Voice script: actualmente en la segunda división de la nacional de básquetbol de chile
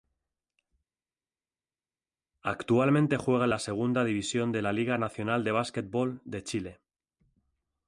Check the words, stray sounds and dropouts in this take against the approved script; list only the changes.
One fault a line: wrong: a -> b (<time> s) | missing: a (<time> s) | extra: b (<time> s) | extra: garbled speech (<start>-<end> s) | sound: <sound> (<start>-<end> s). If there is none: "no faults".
extra: juega (3.2 s)
extra: liga (4.7 s)